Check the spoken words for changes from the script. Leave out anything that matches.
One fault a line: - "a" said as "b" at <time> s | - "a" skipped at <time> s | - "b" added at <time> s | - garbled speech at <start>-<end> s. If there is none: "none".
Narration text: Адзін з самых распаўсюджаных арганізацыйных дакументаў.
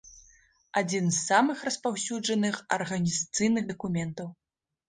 none